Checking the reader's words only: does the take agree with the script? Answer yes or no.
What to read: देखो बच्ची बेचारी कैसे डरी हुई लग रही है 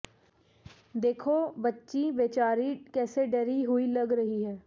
yes